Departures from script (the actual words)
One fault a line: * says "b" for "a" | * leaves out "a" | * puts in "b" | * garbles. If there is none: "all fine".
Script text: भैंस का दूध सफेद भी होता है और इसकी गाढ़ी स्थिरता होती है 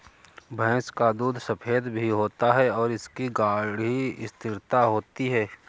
all fine